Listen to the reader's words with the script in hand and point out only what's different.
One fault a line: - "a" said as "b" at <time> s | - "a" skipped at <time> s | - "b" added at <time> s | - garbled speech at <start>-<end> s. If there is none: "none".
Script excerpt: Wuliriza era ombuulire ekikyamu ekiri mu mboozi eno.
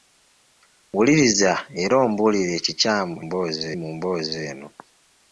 - "ekiri" said as "mboozi" at 3.2 s